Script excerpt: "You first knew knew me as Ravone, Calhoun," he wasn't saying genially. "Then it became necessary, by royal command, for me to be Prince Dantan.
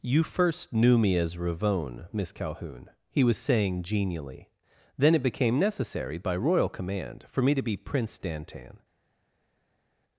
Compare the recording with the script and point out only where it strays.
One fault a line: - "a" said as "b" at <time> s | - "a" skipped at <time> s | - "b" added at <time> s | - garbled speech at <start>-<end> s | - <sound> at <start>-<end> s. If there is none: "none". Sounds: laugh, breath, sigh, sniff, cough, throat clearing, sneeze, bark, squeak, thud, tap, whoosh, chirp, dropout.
- "knew" skipped at 1.0 s
- "Miss" added at 2.1 s
- "wasn't" said as "was" at 3.2 s